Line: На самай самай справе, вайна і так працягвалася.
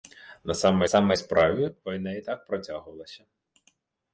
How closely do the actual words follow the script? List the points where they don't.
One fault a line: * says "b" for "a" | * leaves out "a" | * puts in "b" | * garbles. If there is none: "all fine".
all fine